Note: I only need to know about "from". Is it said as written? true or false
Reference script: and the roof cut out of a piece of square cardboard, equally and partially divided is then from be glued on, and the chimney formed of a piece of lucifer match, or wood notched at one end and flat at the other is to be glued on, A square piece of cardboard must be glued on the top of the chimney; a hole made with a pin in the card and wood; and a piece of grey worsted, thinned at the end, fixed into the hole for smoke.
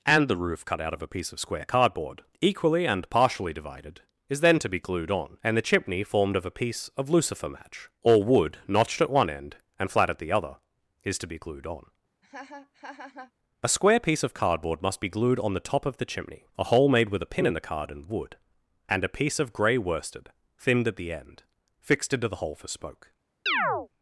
false